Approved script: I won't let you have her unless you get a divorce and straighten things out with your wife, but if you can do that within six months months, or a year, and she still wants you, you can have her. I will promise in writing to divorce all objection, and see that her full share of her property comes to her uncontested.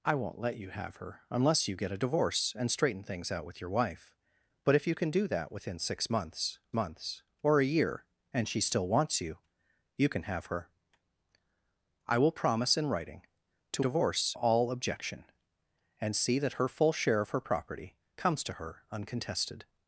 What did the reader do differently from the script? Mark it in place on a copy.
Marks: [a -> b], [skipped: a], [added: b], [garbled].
I won't let you have her unless you get a divorce and straighten things out with your wife, but if you can do that within six months months, or a year, and she still wants you, you can have her. I will promise in writing to divorce all objection, and see that her full share of her property comes to her uncontested.